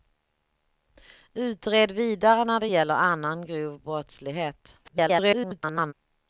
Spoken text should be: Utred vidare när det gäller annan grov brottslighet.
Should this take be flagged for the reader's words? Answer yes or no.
yes